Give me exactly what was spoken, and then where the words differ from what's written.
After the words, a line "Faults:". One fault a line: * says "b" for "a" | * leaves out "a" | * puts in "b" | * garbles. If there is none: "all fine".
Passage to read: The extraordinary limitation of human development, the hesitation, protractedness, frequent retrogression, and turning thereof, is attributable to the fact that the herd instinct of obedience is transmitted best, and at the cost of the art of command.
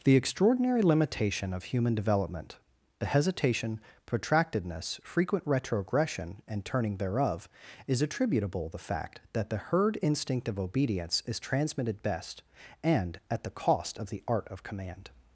The extraordinary limitation of human development, the hesitation, protractedness, frequent retrogression, and turning thereof, is attributable the fact that the herd instinct of obedience is transmitted best, and at the cost of the art of command.
Faults:
* leaves out "to"